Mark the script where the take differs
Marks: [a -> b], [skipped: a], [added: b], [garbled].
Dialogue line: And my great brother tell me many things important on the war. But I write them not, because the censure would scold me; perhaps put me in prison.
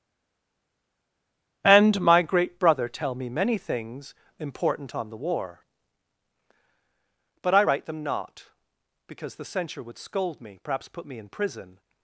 And my great brother tell me many things important on the war. But I write them not, because the censure would scold me; perhaps put me in prison.